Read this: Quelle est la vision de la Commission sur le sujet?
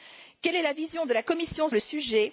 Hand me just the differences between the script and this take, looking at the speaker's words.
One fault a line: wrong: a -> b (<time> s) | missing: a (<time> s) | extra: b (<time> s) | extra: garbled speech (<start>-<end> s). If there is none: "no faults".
missing: sur (1.7 s)